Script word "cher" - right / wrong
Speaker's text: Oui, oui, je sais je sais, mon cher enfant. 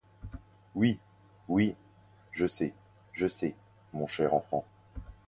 right